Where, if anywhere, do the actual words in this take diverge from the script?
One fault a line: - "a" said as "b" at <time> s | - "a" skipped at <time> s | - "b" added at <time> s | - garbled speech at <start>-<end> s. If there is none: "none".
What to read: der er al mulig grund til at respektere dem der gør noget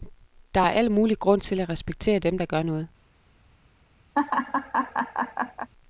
none